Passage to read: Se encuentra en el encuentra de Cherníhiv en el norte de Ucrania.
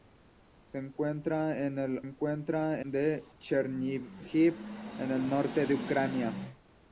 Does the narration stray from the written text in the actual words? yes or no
no